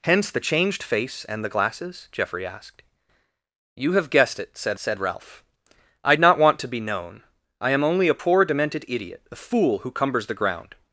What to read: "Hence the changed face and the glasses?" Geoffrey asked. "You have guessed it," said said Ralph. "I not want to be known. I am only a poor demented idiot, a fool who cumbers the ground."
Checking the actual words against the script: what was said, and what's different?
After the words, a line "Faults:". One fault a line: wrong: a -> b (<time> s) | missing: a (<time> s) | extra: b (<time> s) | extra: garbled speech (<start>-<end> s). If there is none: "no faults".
"Hence the changed face and the glasses?" Geoffrey asked. "You have guessed it," said said Ralph. "I not want to be known. I am only a poor demented idiot, a fool who cumbers the ground."
Faults:
no faults